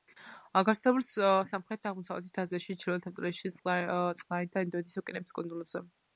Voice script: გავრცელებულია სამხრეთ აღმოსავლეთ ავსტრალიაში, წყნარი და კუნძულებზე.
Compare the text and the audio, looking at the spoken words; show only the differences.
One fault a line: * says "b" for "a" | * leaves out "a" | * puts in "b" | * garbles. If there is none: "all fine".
* puts in "აზიაში ჩრდილოეთ"
* puts in "ინდოეთის ოკეანეების"